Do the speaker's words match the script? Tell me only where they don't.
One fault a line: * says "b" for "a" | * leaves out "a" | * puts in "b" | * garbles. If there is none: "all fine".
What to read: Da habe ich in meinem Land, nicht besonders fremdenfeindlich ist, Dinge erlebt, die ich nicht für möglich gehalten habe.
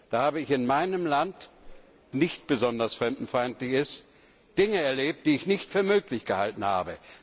all fine